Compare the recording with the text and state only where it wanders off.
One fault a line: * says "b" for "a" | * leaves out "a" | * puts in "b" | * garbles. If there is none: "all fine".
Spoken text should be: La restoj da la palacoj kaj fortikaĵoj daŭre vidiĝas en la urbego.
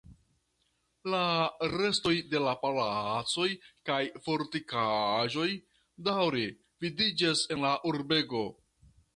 * says "de" for "da"